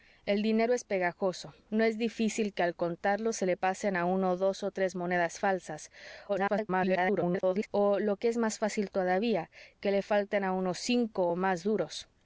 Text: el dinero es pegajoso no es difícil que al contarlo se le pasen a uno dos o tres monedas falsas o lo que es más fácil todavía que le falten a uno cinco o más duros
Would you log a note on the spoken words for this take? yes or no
yes